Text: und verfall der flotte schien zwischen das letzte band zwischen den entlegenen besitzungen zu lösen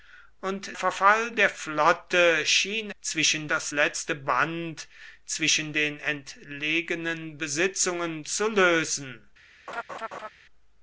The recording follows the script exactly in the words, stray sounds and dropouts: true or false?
false